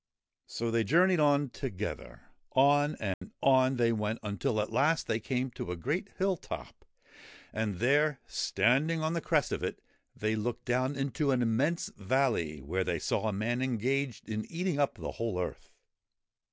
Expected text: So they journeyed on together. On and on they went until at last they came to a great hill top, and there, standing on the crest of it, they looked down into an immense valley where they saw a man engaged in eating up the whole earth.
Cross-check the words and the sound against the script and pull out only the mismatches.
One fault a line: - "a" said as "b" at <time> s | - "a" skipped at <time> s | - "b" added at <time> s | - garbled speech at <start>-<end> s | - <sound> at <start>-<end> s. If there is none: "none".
- dropout at 3.1-3.2 s